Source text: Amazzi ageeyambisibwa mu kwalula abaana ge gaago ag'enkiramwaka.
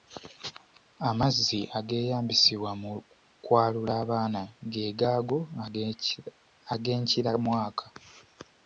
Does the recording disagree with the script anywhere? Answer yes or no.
no